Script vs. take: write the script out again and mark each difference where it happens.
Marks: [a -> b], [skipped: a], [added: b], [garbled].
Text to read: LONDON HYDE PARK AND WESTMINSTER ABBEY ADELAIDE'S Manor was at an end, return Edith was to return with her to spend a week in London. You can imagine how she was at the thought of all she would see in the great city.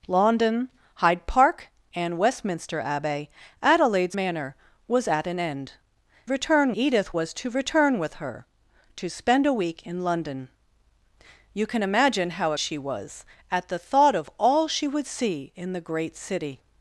LONDON HYDE PARK AND WESTMINSTER ABBEY ADELAIDE'S Manor was at an end, return Edith was to return with her to spend a week in London. You can imagine how she was at the thought of all she would see in the great city.